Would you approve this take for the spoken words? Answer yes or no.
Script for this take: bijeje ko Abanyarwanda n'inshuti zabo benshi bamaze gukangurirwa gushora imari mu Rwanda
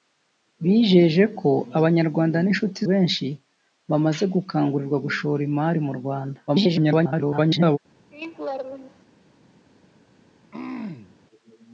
no